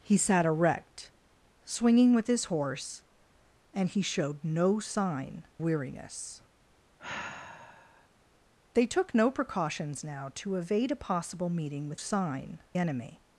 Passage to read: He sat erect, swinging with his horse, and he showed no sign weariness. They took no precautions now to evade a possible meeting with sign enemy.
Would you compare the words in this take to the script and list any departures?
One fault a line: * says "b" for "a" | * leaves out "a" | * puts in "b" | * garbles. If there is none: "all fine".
all fine